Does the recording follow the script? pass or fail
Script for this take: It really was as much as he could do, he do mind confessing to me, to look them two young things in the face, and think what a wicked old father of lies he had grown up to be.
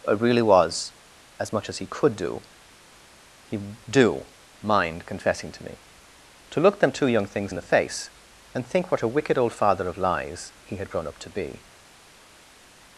pass